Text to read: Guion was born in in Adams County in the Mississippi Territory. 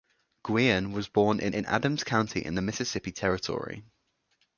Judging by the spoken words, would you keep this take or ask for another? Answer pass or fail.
pass